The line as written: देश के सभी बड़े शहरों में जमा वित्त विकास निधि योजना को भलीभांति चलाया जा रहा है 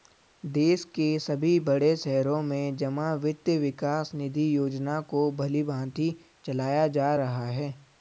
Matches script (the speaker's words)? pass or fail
pass